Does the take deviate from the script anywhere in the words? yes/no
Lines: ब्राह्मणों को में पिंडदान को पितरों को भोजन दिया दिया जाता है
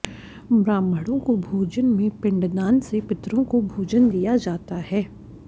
yes